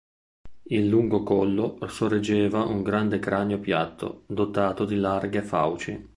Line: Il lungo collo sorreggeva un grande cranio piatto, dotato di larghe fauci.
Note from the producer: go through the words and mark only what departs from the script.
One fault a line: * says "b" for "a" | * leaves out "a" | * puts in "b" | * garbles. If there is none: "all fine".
all fine